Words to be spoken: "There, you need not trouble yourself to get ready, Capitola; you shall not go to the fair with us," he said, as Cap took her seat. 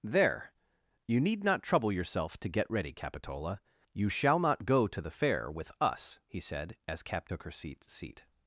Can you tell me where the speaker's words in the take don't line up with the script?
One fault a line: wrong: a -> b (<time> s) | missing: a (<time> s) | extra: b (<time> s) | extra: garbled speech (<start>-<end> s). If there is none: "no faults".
extra: seat (7.8 s)